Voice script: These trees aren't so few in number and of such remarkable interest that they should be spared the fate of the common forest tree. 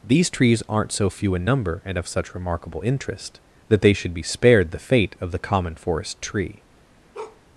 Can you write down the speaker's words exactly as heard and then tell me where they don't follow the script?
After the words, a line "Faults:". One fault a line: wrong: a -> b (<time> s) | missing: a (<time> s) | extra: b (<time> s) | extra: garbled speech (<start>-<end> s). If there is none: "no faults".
These trees aren't so few in number and of such remarkable interest that they should be spared the fate of the common forest tree.
Faults:
no faults